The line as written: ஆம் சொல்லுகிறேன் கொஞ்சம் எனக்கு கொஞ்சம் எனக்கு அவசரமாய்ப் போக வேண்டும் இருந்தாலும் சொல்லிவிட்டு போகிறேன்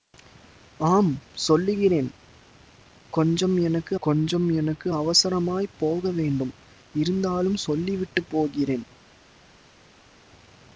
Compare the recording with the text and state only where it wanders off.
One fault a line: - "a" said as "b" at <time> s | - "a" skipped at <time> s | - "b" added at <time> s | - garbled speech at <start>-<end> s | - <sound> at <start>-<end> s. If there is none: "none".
none